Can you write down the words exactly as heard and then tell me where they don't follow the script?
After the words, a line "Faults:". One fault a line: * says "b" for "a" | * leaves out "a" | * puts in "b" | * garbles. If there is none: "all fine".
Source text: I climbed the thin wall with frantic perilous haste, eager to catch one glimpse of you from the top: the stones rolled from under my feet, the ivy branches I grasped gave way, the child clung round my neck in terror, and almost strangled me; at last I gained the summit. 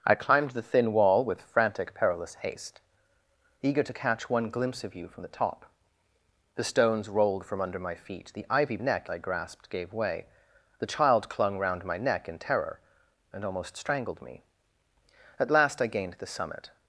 I climbed the thin wall with frantic perilous haste, eager to catch one glimpse of you from the top: the stones rolled from under my feet, the ivy neck I grasped gave way, the child clung round my neck in terror, and almost strangled me; at last I gained the summit.
Faults:
* says "neck" for "branches"